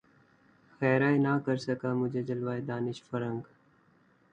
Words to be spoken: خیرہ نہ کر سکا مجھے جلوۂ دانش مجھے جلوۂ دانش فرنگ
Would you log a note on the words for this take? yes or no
yes